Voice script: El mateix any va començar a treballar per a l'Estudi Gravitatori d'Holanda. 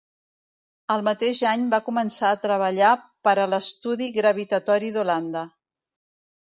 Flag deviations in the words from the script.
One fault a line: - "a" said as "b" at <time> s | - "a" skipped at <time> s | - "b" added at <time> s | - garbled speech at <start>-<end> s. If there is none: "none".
none